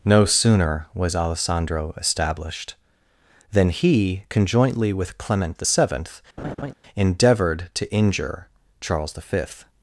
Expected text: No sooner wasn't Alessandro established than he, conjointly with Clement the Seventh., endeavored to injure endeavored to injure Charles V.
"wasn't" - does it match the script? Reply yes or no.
no